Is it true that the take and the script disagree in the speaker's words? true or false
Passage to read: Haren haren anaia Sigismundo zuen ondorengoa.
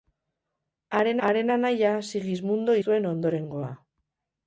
false